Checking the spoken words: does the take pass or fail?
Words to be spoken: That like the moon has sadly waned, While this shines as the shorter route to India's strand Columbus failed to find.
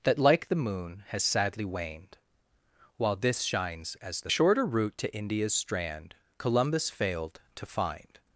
pass